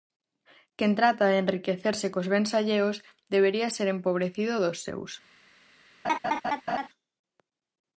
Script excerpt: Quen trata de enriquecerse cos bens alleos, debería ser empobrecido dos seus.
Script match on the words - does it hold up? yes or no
yes